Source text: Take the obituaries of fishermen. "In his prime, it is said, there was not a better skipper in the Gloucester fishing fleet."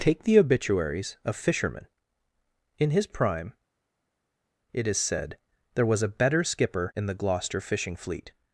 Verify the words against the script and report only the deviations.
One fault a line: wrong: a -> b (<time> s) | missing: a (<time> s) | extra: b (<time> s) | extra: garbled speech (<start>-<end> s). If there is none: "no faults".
missing: not (6.0 s)